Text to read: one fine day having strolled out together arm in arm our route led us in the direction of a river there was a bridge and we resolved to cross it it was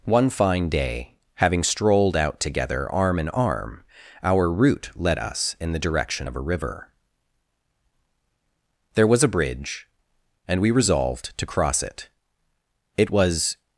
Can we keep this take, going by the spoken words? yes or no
yes